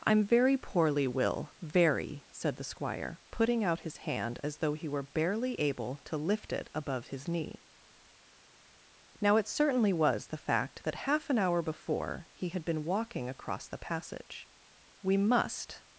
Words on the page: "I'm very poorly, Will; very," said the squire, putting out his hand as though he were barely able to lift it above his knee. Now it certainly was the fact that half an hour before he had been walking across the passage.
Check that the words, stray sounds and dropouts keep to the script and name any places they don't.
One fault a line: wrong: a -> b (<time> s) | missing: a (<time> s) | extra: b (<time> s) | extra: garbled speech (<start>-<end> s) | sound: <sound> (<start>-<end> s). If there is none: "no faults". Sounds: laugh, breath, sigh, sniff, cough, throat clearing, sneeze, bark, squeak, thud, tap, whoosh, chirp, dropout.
extra: We must (15.0 s)